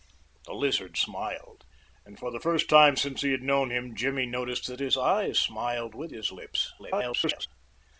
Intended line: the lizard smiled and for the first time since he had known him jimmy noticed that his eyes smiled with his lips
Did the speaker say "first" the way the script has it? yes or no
yes